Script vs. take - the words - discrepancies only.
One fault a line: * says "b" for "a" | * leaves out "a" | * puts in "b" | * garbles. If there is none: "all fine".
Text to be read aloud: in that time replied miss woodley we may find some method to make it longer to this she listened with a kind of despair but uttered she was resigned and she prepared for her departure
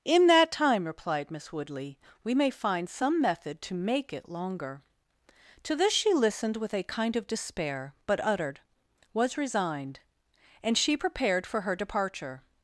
* leaves out "she"